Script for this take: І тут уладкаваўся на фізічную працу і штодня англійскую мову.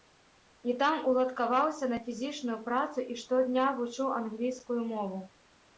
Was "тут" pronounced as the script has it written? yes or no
no